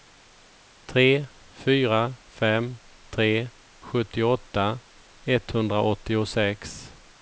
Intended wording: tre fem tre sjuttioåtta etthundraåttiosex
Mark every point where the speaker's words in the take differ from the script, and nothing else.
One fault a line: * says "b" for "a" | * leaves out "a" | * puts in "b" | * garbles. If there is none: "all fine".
* puts in "fyra"